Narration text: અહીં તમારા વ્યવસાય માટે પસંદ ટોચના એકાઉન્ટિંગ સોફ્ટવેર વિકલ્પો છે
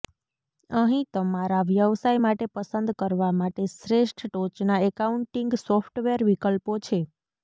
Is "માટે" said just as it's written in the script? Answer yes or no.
yes